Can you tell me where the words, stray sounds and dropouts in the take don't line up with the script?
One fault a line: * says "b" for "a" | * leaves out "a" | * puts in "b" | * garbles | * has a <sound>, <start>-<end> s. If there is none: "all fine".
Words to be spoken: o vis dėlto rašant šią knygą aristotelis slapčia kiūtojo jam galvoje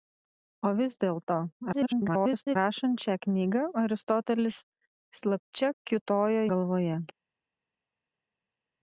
* garbles
* leaves out "jam"